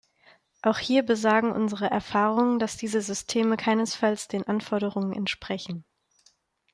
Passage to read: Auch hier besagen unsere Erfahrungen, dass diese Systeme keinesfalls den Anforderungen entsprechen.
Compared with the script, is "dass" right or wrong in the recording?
right